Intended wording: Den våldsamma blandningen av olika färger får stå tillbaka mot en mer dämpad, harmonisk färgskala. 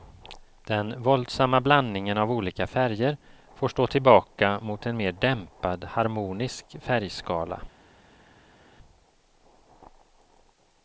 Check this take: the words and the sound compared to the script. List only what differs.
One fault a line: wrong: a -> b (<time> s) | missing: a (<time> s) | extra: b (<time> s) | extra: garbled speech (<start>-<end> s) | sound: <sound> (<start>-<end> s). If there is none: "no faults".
no faults